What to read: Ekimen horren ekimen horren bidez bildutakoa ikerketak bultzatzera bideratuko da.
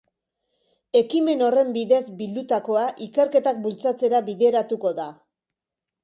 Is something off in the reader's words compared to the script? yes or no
yes